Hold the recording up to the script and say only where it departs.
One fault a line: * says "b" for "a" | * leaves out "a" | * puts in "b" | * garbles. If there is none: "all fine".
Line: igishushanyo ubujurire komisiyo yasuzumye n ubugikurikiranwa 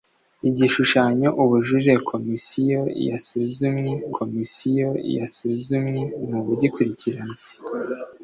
* puts in "komisiyo yasuzumye"